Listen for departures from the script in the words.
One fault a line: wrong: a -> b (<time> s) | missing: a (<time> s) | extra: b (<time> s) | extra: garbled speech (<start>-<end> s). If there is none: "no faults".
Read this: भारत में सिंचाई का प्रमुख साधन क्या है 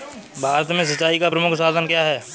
no faults